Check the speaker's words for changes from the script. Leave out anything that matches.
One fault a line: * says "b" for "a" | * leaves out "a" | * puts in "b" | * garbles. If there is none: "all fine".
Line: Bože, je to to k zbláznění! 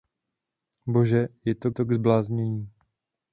all fine